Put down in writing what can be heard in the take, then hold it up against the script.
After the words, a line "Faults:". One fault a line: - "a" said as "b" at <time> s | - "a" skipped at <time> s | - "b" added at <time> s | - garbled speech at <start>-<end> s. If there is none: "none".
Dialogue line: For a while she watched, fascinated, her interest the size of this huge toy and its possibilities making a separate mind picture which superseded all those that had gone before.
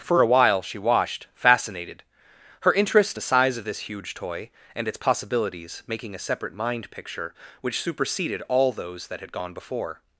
For a while she watched, fascinated, her interest the size of this huge toy and its possibilities making a separate mind picture which superseded all those that had gone before.
Faults:
none